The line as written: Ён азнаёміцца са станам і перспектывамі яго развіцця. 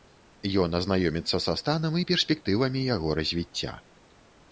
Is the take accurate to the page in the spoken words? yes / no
yes